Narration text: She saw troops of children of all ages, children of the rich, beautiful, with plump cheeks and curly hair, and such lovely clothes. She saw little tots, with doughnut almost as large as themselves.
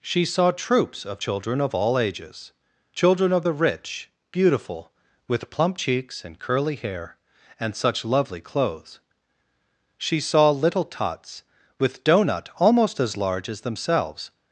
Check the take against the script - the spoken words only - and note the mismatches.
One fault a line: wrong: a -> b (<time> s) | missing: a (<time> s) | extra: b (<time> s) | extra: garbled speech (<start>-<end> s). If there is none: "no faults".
no faults